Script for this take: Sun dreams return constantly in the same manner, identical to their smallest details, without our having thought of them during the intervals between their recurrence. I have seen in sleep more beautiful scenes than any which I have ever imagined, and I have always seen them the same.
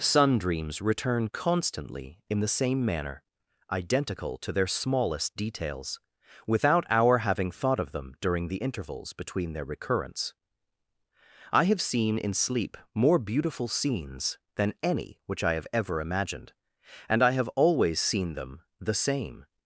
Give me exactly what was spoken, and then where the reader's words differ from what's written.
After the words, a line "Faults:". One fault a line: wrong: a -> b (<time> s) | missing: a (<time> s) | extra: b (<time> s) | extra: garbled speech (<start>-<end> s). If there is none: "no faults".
Sun dreams return constantly in the same manner, identical to their smallest details, without our having thought of them during the intervals between their recurrence. I have seen in sleep more beautiful scenes than any which I have ever imagined, and I have always seen them the same.
Faults:
no faults